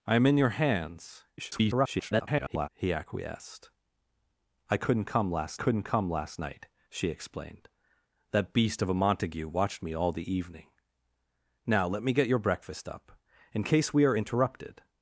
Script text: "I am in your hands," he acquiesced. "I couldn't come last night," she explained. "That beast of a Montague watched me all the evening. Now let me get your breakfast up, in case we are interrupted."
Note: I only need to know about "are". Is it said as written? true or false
true